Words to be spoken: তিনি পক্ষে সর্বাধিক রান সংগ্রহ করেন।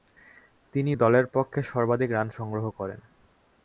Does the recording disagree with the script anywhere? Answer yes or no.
yes